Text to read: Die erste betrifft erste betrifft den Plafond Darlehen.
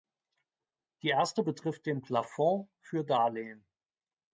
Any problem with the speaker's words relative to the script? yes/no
yes